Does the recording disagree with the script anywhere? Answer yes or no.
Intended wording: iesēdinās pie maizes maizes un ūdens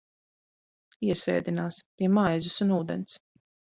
yes